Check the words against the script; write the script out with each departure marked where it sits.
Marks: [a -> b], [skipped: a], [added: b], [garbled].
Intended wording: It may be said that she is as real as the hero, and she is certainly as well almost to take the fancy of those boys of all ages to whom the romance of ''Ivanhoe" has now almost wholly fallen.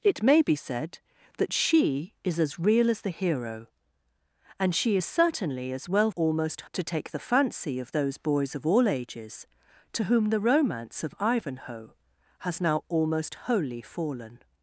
It may be said that she is as real as the hero, and she is certainly as well almost to take the fancy of those boys of all ages to whom the romance of ''Ivanhoe" has now almost wholly fallen.